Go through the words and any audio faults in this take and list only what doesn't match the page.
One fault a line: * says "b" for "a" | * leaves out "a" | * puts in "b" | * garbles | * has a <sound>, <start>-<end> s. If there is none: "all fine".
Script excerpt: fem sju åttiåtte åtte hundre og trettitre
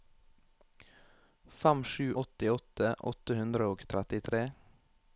all fine